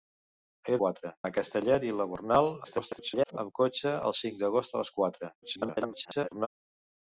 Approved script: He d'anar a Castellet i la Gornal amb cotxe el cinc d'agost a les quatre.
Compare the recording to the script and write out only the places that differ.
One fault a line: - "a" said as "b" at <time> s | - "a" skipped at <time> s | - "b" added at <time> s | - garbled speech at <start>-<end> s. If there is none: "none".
- "d'anar" said as "quatre" at 0.8 s
- garbled speech at 2.6-3.4 s
- garbled speech at 5.4-6.5 s